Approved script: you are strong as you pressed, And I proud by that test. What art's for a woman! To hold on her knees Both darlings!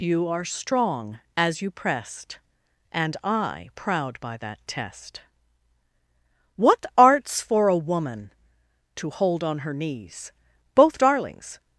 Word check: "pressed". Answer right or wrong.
right